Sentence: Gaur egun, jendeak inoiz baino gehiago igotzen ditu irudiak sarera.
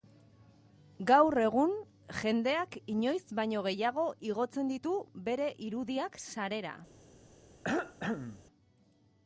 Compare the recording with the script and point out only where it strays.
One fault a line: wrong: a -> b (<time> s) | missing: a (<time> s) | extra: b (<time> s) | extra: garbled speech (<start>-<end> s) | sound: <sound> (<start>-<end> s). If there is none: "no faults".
extra: bere (5.3 s)
sound: cough (7.6-8.4 s)